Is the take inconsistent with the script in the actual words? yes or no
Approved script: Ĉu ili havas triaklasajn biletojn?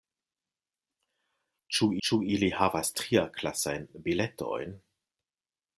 yes